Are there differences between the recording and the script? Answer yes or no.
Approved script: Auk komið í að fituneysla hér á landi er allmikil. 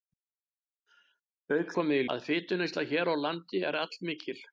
no